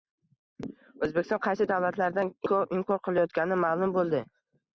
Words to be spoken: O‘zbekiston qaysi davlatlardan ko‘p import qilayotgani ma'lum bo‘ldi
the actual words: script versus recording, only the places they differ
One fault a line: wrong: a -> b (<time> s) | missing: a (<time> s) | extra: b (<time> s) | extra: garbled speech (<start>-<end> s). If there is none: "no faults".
no faults